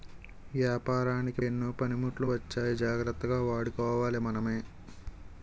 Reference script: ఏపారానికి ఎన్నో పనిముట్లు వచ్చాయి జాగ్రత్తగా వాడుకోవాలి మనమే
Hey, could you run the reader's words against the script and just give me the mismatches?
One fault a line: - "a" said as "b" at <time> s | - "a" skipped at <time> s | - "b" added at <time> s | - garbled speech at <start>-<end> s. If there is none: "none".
none